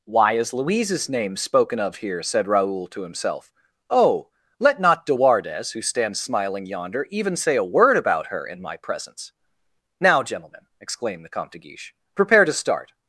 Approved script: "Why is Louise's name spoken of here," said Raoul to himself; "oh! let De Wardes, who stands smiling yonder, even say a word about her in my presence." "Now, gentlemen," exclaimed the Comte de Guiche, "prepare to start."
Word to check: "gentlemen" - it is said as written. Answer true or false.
true